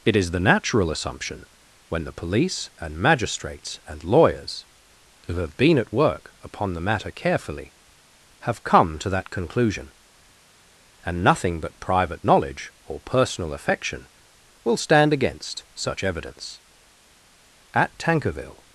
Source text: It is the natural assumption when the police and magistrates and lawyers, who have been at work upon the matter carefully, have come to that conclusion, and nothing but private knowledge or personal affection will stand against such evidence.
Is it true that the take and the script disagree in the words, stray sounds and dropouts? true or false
true